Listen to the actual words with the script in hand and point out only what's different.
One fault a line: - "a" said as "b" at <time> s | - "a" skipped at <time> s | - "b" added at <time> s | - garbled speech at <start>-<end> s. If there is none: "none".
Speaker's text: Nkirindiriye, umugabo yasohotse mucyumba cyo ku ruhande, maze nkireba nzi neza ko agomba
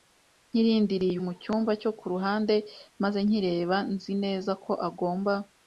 - "umugabo yasohotse" skipped at 1.2 s